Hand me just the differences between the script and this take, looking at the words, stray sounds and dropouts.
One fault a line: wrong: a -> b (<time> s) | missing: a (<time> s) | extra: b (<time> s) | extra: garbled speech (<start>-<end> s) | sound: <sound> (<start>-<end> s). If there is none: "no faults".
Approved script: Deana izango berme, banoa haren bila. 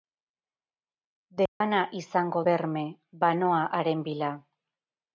sound: dropout (1.5-1.6 s)